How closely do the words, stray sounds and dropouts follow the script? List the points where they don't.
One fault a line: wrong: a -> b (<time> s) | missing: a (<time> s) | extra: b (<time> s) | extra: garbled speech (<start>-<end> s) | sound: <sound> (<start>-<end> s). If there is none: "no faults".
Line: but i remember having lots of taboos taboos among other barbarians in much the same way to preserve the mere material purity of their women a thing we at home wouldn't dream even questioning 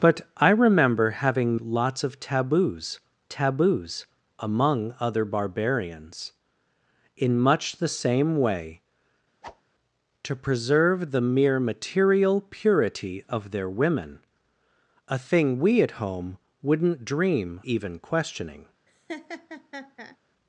sound: whoosh (9.4-9.6 s)
sound: laugh (18.9-20.2 s)